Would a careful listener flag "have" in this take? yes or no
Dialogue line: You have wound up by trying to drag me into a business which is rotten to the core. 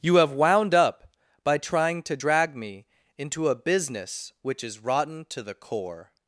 no